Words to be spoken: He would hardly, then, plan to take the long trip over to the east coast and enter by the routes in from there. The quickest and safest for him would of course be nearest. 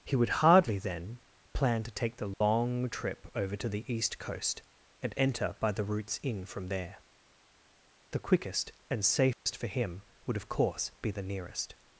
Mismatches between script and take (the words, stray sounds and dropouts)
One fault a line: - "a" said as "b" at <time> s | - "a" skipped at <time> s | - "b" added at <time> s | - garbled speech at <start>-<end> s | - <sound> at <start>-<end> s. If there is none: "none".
- dropout at 2.3-2.4 s
- dropout at 9.3-9.5 s
- "the" added at 11.1 s